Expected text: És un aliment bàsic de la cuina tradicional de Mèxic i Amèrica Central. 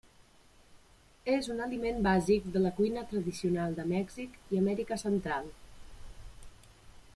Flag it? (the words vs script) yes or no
no